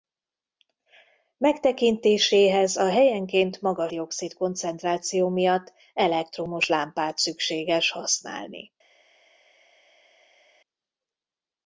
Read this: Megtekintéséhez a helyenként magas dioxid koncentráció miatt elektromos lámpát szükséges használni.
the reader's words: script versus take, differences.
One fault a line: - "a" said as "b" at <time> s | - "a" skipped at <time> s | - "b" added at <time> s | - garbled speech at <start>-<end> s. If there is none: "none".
none